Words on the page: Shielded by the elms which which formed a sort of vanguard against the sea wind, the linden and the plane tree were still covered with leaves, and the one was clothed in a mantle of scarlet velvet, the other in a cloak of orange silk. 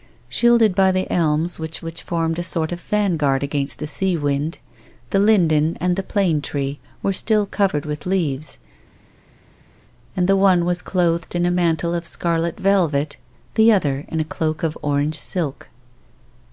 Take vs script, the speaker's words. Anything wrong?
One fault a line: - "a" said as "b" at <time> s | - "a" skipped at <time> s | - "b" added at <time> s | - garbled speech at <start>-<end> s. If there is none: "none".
none